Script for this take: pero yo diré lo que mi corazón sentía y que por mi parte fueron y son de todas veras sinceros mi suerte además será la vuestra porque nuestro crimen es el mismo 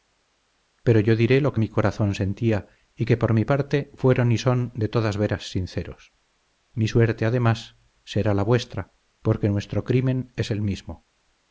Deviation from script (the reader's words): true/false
false